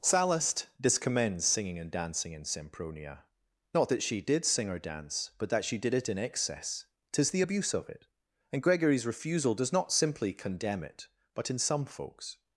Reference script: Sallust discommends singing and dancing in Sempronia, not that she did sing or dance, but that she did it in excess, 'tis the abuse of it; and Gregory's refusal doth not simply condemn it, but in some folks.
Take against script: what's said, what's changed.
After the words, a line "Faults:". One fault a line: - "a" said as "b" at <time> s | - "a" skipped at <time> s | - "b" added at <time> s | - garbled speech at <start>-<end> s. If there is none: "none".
Sallust discommends singing and dancing in Sempronia, not that she did sing or dance, but that she did it in excess, 'tis the abuse of it; and Gregory's refusal does not simply condemn it, but in some folks.
Faults:
- "doth" said as "does" at 9.6 s